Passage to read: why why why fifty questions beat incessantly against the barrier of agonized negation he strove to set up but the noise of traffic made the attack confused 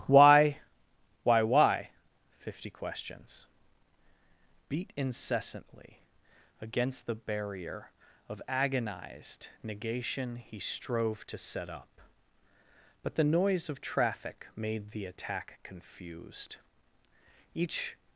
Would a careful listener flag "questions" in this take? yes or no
no